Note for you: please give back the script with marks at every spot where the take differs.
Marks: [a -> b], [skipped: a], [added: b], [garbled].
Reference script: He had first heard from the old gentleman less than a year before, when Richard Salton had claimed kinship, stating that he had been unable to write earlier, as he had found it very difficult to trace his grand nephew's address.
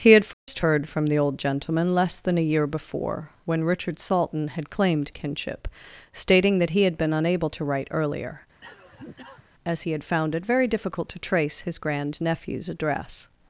He had first heard from the old gentleman less than a year before, when Richard Salton had claimed kinship, stating that he had been unable to write earlier, as he had found it very difficult to trace his grand nephew's address.